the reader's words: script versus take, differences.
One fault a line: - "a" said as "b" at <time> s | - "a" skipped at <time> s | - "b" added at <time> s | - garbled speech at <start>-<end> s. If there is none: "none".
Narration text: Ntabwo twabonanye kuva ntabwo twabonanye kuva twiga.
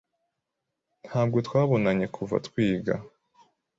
- "ntabwo twabonanye kuva" skipped at 2.3 s